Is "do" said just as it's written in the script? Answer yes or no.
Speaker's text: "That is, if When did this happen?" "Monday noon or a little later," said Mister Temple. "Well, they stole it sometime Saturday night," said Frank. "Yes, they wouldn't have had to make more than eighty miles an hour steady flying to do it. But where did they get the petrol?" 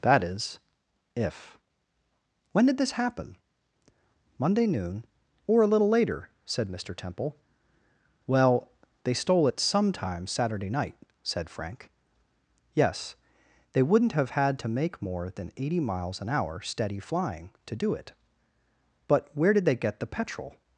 yes